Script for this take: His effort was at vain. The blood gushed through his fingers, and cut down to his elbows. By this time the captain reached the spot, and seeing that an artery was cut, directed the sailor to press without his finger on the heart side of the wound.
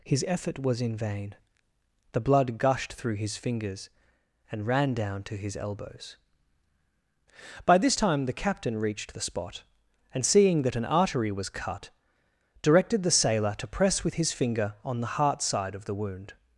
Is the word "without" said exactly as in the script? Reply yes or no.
no